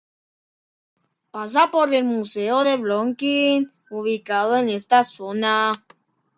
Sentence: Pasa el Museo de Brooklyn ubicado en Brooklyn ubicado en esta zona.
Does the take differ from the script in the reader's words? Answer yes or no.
yes